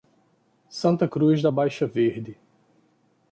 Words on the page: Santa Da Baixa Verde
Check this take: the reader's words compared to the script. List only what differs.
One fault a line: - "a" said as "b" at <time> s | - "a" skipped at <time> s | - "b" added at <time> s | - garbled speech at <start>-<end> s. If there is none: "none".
- "Cruz" added at 1.0 s